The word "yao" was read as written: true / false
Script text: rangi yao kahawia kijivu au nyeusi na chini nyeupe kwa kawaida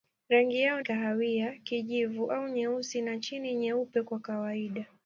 true